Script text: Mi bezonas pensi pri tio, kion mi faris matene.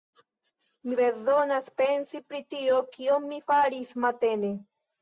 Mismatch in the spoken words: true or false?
false